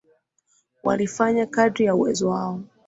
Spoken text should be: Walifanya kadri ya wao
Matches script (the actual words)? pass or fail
fail